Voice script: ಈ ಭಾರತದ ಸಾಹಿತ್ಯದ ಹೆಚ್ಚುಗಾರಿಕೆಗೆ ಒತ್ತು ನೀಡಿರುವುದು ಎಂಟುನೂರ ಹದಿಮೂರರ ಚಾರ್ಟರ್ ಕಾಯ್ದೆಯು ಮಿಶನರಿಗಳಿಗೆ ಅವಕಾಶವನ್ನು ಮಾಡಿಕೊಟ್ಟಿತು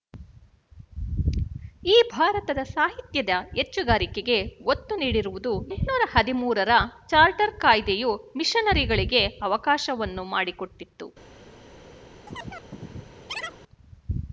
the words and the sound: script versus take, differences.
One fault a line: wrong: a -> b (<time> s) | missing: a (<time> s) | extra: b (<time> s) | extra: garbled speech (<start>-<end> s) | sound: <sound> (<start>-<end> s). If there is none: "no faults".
sound: chirp (12.3-13.6 s)